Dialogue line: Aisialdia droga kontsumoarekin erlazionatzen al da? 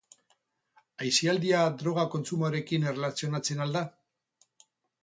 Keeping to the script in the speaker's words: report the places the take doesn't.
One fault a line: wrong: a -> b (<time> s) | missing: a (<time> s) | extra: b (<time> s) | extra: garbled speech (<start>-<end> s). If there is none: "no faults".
no faults